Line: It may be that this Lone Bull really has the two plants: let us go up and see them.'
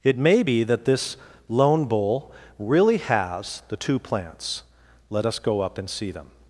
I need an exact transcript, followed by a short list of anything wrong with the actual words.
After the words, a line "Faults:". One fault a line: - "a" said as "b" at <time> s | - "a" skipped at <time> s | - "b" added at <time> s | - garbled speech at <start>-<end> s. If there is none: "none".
It may be that this Lone Bull really has the two plants: let us go up and see them.'
Faults:
none